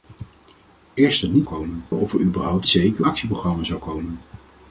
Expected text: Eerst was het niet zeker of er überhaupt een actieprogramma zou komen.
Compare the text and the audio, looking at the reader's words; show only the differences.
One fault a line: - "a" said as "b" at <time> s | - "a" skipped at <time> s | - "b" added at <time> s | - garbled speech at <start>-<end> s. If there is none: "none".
- "was" skipped at 1.2 s
- "zeker" said as "komen" at 1.4 s
- "een" said as "zeker" at 2.7 s